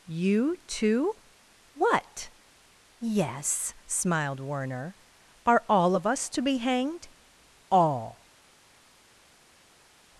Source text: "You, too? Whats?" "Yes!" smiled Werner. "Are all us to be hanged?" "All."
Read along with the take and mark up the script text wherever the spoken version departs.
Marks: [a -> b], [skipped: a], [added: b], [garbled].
"You, too? [Whats?" -> What] "Yes!" smiled Werner. "Are all [added: of] us to be hanged?" "All."